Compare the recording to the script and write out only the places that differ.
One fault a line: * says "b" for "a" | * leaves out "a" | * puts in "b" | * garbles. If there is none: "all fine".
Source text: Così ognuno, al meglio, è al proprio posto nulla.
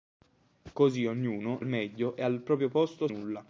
all fine